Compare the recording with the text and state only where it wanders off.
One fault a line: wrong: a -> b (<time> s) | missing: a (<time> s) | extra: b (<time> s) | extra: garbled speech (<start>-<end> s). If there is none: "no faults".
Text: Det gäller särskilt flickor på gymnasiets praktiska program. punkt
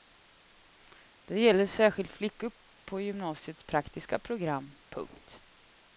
no faults